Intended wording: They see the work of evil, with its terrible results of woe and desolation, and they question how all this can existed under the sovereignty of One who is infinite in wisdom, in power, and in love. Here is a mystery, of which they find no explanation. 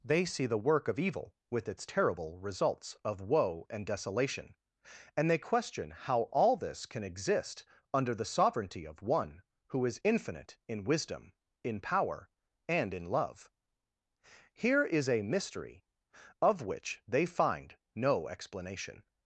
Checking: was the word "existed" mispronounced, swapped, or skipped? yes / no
yes